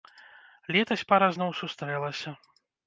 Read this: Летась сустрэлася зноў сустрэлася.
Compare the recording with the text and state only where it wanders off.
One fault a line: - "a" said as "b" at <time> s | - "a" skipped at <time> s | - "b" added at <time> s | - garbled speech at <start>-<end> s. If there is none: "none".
- "сустрэлася" said as "пара" at 1.1 s